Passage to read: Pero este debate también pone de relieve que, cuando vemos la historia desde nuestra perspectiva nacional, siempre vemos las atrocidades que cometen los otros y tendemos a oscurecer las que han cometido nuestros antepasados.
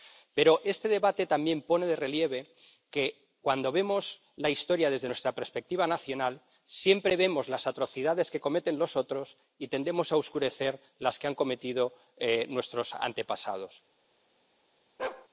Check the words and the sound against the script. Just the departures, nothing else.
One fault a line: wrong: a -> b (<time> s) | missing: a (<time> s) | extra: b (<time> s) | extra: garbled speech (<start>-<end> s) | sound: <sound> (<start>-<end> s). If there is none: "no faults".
sound: bark (15.0-15.3 s)